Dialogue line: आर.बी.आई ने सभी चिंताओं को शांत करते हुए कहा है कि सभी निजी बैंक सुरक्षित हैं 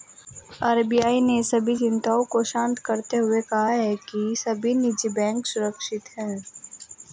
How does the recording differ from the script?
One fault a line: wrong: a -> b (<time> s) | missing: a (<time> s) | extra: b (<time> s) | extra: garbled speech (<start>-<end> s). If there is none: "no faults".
no faults